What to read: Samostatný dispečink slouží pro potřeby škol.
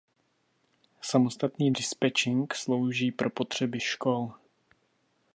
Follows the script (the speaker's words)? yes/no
yes